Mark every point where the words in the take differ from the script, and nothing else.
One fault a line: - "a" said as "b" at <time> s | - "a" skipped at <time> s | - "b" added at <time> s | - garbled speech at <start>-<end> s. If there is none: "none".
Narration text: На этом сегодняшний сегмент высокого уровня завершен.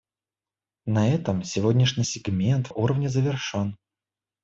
- "высокого" skipped at 2.7 s